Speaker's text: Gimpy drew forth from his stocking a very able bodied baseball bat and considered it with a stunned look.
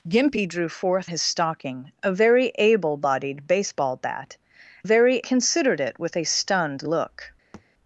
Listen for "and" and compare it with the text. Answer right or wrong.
wrong